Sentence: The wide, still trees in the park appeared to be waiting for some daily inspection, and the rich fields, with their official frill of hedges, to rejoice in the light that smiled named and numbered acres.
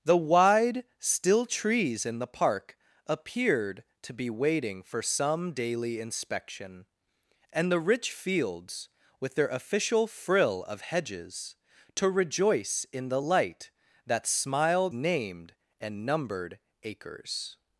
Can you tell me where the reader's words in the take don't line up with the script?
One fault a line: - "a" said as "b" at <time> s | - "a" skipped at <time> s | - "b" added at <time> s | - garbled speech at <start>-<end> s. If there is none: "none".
none